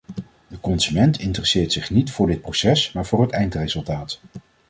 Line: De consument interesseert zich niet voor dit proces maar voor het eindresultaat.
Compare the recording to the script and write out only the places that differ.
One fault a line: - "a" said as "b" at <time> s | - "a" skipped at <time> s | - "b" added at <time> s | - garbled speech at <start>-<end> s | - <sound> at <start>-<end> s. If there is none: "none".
none